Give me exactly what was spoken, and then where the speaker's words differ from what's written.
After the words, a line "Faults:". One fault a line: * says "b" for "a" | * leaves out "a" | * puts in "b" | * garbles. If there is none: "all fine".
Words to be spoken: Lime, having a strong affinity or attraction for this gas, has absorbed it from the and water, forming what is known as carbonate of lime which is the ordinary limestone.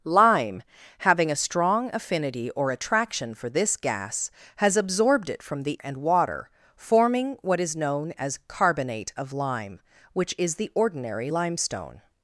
Lime, having a strong affinity or attraction for this gas, has absorbed it from the and water, forming what is known as carbonate of lime which is the ordinary limestone.
Faults:
all fine